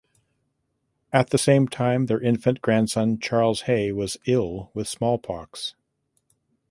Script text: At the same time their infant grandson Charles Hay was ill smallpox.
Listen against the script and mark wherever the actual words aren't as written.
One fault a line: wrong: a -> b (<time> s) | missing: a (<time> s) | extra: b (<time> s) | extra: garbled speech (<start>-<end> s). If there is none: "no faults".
extra: with (4.7 s)